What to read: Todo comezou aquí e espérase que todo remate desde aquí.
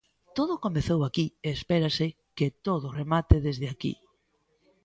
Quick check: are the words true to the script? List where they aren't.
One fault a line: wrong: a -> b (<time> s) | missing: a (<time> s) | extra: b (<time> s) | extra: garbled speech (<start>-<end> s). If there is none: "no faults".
no faults